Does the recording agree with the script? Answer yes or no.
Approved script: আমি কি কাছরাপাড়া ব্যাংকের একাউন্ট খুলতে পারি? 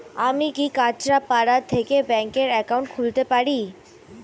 no